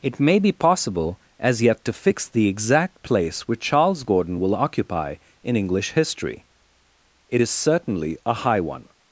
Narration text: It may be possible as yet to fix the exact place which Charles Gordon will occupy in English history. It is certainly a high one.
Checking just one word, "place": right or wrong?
right